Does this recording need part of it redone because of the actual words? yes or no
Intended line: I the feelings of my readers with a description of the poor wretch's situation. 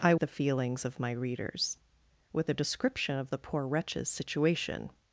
no